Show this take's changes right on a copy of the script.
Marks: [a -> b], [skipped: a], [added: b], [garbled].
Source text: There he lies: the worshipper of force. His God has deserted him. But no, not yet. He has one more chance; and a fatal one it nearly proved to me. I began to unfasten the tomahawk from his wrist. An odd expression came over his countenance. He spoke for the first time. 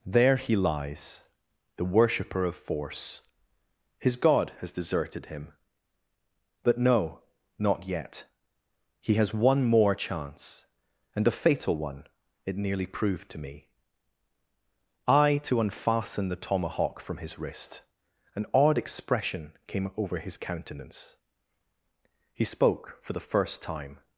There he lies: the worshipper of force. His God has deserted him. But no, not yet. He has one more chance; and a fatal one it nearly proved to me. I [skipped: began] to unfasten the tomahawk from his wrist. An odd expression came over his countenance. He spoke for the first time.